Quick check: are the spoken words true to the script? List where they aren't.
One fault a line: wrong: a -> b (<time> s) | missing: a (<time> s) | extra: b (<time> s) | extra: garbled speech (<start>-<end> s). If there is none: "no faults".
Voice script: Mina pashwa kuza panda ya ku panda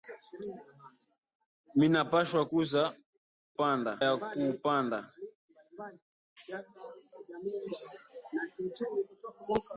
no faults